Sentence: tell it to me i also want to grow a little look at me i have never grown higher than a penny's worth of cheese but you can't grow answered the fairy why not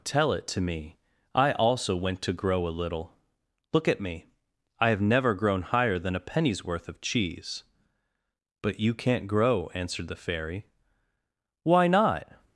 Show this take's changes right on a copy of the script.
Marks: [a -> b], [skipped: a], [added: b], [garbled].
tell it to me i also [want -> went] to grow a little look at me i have never grown higher than a penny's worth of cheese but you can't grow answered the fairy why not